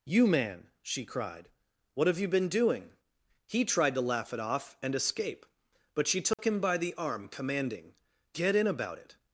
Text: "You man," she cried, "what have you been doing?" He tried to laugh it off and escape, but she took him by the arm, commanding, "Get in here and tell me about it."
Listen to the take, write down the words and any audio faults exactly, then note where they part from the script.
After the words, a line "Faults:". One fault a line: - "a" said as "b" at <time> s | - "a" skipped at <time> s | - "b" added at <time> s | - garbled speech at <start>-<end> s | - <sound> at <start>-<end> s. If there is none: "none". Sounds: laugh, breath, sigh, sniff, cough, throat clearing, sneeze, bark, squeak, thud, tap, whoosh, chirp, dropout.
"You man," she cried, "what have you been doing?" He tried to laugh it off and escape, but she took him by the arm, commanding, "Get in about it."
Faults:
- dropout at 6.3-6.4 s
- "here and tell me" skipped at 8.7 s